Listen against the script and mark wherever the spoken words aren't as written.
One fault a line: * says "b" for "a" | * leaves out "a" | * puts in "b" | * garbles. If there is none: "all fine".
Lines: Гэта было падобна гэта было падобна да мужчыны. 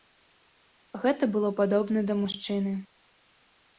* leaves out "гэта было падобна"